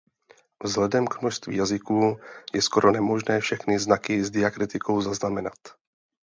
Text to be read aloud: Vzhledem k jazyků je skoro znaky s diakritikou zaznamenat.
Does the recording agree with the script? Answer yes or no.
no